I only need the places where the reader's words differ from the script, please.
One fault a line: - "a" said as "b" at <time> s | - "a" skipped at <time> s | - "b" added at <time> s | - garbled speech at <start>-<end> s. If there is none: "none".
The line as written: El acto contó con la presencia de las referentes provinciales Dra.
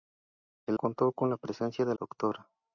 - "acto" skipped at 0.8 s
- "las referentes provinciales" skipped at 1.9 s